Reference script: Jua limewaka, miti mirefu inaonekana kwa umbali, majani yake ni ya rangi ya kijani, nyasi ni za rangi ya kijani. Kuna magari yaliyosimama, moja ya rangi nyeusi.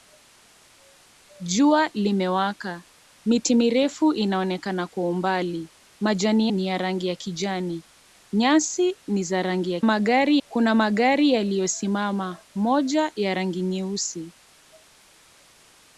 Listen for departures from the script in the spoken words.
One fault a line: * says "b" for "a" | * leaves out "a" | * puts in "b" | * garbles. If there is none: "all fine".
* leaves out "yake"
* says "magari" for "kijani"